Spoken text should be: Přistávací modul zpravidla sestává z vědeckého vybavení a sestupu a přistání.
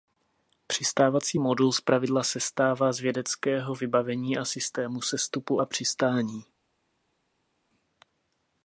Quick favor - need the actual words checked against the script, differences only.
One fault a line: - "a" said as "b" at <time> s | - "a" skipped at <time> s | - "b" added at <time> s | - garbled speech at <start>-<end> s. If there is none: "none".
- "systému" added at 4.4 s